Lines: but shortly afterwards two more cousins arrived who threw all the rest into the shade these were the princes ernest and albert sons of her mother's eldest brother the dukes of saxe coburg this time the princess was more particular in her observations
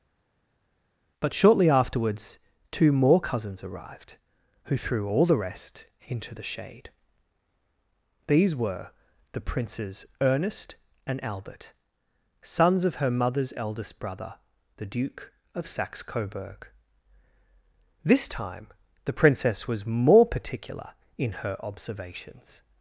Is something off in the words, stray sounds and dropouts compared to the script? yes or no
yes